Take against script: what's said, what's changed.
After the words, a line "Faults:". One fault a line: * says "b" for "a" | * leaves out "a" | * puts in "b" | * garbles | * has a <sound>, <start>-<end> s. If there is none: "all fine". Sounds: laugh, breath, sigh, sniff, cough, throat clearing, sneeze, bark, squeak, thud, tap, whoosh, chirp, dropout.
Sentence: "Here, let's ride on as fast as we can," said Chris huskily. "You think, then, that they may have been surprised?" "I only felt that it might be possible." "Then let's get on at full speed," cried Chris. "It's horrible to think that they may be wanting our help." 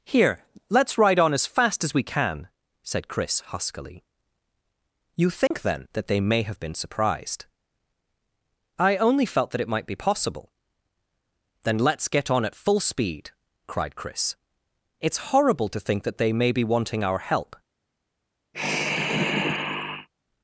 "Here, let's ride on as fast as we can," said Chris huskily. "You think, then, that they may have been surprised?" "I only felt that it might be possible." "Then let's get on at full speed," cried Chris. "It's horrible to think that they may be wanting our help."
Faults:
* has a dropout, 5.5-5.5 s
* has a sigh, 18.5-20.1 s